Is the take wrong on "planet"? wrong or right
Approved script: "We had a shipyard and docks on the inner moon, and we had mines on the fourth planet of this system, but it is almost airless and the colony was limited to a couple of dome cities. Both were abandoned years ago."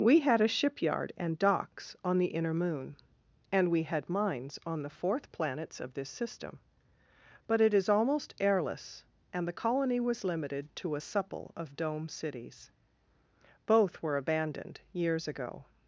wrong